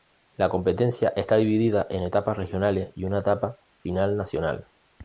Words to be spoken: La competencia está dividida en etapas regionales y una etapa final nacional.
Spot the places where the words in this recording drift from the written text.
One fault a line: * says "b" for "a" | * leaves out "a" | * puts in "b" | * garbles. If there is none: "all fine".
all fine